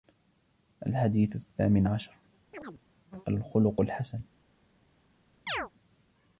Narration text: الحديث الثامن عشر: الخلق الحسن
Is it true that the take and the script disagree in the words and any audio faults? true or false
true